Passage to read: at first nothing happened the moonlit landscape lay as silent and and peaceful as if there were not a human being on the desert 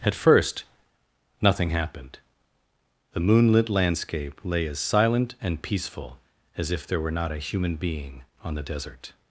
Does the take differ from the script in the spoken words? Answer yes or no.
yes